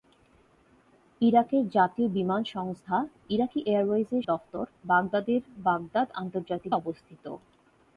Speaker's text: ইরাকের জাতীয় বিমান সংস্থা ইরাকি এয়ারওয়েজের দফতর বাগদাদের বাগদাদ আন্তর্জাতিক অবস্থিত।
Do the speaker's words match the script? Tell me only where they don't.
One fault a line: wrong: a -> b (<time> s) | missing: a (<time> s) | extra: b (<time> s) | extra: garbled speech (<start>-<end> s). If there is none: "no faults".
no faults